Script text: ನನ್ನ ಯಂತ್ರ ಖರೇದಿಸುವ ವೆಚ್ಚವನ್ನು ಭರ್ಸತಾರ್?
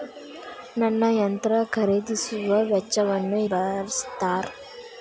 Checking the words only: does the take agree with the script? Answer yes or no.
yes